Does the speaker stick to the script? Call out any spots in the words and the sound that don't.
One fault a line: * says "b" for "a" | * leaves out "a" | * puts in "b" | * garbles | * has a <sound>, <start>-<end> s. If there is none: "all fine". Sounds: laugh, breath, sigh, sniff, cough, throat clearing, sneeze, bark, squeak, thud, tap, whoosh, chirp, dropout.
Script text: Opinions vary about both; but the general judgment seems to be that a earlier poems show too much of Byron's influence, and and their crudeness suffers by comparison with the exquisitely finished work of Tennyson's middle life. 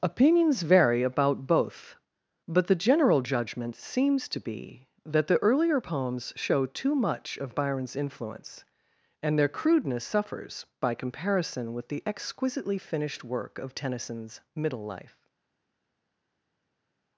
* says "the" for "a"
* leaves out "and"